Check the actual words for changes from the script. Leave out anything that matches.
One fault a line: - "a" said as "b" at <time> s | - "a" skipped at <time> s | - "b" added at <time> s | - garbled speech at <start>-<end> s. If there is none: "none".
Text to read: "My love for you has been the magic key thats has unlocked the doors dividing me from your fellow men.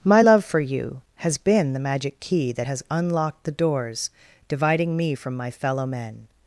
- "thats" said as "that" at 2.5 s
- "your" said as "my" at 5.4 s